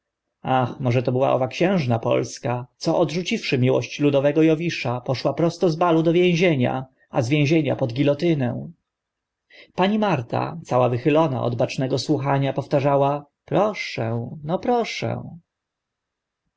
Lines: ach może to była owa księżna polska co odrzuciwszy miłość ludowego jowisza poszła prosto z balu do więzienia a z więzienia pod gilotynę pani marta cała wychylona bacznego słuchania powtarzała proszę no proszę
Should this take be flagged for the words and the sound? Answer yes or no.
yes